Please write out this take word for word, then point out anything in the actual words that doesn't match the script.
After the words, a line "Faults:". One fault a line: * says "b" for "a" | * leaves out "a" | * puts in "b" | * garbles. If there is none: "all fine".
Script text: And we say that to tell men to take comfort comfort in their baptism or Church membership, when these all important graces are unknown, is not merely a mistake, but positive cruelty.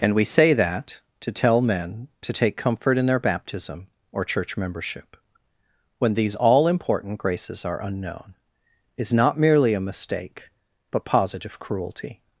And we say that to tell men to take comfort in their baptism or Church membership, when these all important graces are unknown, is not merely a mistake, but positive cruelty.
Faults:
* leaves out "comfort"